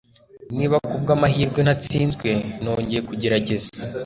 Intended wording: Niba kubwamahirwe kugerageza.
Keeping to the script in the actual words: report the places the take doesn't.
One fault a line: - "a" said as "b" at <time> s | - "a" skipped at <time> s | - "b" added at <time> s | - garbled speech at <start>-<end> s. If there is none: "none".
- "natsinzwe nongeye" added at 1.6 s